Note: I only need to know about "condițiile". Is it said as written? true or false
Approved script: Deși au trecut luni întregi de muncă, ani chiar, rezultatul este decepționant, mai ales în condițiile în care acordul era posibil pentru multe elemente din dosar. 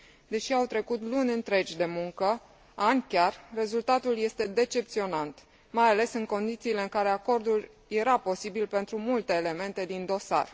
true